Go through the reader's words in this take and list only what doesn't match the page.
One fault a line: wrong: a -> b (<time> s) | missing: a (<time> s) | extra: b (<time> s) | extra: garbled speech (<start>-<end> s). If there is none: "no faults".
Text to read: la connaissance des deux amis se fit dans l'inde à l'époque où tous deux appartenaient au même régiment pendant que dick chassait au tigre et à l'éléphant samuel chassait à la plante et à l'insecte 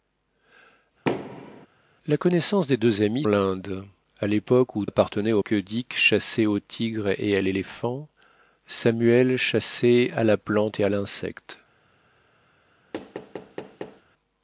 missing: se fit dans (3.3 s)
missing: tous deux (4.9 s)
missing: même régiment pendant (5.4 s)